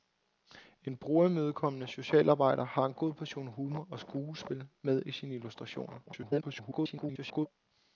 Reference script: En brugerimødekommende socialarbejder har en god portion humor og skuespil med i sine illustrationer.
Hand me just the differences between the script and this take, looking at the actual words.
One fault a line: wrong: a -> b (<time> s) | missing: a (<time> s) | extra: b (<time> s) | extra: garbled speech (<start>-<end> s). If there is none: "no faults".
extra: garbled speech (6.1-7.5 s)